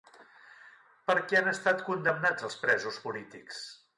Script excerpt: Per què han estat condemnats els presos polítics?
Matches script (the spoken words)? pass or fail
pass